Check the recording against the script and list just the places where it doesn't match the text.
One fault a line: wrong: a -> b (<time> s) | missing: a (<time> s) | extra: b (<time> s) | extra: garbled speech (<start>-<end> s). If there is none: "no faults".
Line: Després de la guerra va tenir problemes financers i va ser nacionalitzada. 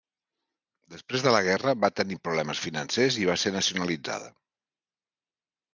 no faults